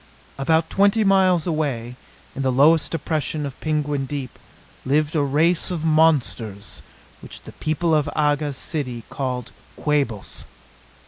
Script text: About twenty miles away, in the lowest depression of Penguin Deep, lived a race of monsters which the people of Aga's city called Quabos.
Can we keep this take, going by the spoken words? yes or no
yes